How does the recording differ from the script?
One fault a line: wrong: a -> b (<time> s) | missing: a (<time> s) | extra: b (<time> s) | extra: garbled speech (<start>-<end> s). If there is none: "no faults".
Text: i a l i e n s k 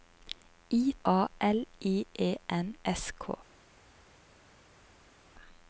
no faults